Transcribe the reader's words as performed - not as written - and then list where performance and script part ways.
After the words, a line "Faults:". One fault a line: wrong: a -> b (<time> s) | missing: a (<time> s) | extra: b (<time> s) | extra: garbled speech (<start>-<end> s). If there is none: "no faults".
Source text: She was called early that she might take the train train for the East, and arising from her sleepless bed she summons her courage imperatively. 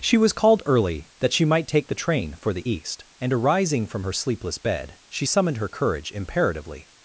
She was called early that she might take the train for the East, and arising from her sleepless bed she summoned her courage imperatively.
Faults:
missing: train (2.4 s)
wrong: summons -> summoned (5.2 s)